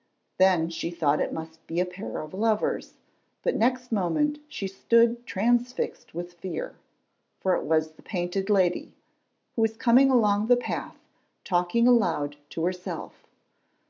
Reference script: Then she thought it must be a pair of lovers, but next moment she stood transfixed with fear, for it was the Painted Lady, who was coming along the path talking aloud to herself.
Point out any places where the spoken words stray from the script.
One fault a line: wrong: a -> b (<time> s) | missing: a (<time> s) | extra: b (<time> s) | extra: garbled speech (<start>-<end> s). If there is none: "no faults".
no faults